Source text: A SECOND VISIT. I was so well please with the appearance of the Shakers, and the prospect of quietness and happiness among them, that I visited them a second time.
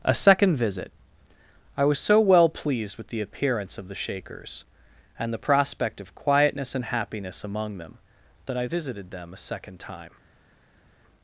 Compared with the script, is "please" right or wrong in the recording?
wrong